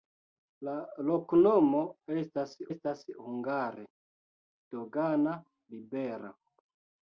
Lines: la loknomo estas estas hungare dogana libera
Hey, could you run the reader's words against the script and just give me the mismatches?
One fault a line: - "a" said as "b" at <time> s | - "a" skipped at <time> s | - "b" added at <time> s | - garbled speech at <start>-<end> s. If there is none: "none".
none